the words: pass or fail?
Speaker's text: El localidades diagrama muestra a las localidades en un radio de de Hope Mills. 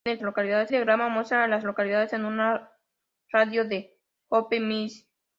pass